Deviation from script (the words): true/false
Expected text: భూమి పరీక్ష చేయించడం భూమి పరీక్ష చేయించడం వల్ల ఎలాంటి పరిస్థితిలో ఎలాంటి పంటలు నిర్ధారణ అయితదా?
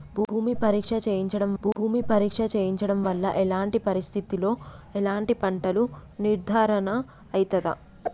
false